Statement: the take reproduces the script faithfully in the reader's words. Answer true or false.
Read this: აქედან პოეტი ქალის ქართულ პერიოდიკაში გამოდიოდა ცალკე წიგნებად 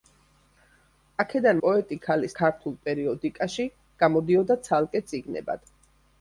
true